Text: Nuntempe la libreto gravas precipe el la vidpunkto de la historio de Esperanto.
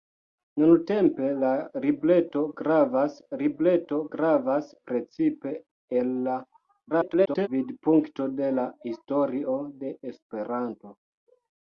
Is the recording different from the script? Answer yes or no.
yes